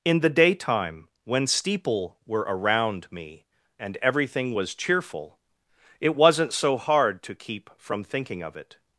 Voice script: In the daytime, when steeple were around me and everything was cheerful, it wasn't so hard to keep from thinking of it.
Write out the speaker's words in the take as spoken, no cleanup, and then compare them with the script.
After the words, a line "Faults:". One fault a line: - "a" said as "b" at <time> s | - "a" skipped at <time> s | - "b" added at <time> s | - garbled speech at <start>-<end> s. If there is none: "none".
In the daytime, when steeple were around me and everything was cheerful, it wasn't so hard to keep from thinking of it.
Faults:
none